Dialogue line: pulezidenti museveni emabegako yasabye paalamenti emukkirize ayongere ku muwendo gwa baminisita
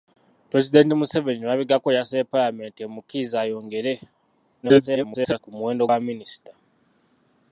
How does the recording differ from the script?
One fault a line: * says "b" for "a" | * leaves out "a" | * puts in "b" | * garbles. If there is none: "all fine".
* garbles
* leaves out "gwa"